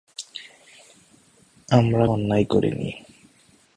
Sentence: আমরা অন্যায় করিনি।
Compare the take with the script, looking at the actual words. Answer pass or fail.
pass